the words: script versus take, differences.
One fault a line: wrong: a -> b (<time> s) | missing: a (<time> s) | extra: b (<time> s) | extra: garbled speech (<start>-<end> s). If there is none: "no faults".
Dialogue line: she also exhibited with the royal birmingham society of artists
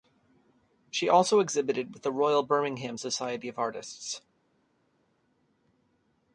no faults